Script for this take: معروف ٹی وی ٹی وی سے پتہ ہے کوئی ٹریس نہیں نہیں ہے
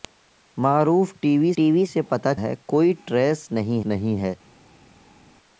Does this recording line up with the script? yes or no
yes